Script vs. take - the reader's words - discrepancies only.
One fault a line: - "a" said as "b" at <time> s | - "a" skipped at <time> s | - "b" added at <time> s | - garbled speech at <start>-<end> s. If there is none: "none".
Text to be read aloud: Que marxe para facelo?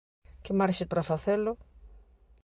none